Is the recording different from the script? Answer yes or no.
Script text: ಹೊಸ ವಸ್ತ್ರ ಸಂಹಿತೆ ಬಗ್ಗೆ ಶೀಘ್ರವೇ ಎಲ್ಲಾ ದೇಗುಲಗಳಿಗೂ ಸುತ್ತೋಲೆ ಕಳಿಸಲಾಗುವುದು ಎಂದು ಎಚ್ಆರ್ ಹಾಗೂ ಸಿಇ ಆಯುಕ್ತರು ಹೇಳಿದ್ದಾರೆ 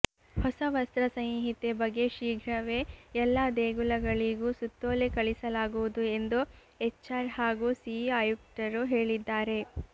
no